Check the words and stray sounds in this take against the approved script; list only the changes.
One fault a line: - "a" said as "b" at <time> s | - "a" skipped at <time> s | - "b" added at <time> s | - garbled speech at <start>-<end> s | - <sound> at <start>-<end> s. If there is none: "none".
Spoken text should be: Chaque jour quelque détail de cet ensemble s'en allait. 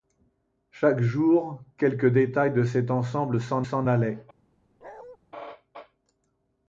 - "s'en" added at 3.6 s
- bark at 4.8-5.2 s